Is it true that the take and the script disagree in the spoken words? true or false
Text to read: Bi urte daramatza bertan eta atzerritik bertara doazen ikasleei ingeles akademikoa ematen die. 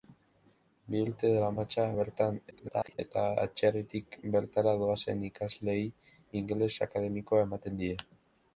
true